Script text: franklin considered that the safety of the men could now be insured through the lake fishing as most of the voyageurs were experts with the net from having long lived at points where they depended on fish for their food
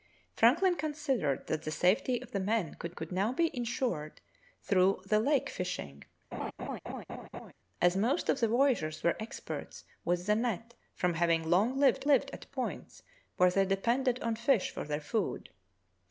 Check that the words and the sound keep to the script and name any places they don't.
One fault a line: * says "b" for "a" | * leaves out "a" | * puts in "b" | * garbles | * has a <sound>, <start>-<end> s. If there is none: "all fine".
* puts in "could"
* has a laugh, 6.3-7.5 s
* puts in "lived"